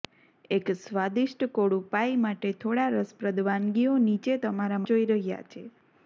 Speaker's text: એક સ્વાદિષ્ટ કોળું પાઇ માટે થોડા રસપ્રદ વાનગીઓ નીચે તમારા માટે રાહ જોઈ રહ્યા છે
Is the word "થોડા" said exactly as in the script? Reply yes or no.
yes